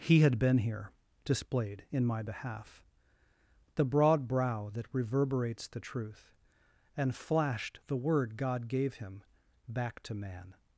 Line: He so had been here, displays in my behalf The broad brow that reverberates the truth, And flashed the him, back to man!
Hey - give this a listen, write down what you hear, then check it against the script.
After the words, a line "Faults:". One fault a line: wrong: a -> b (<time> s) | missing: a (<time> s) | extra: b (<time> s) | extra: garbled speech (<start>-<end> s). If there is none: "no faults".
He had been here, displayed in my behalf The broad brow that reverberates the truth, And flashed the word God gave him, back to man!
Faults:
missing: so (0.2 s)
wrong: displays -> displayed (1.2 s)
extra: word God gave (8.0 s)